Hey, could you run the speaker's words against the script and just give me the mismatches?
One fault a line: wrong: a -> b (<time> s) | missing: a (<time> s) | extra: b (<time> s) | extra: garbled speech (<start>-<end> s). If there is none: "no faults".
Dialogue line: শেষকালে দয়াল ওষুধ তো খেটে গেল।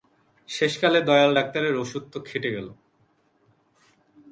extra: ডাক্তারের (1.3 s)